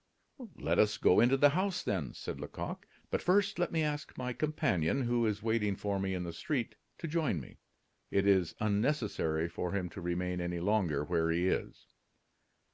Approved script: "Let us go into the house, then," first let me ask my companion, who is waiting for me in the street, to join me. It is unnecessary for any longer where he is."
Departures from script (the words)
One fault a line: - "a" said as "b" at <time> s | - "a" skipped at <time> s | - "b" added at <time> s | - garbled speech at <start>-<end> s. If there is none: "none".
- "said Lecoq But" added at 2.1 s
- "him to remain" added at 9.7 s